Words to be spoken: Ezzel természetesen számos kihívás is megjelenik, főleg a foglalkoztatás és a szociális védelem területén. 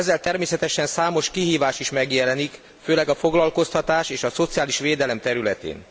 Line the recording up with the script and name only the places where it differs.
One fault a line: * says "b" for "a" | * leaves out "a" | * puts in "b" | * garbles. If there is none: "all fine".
all fine